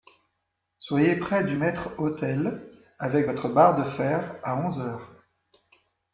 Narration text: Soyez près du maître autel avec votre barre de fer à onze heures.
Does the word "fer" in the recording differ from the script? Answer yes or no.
no